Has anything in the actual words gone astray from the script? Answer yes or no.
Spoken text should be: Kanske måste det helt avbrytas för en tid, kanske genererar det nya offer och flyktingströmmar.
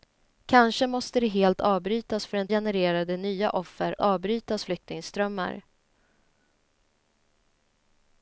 yes